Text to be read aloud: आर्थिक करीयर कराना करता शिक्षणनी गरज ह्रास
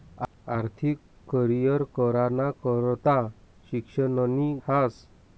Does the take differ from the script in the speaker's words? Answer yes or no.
yes